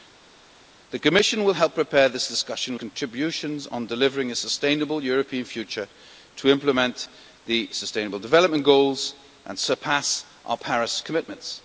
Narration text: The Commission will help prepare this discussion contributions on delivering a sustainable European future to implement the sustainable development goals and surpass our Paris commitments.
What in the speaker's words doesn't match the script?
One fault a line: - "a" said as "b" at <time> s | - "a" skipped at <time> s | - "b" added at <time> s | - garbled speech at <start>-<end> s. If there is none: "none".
none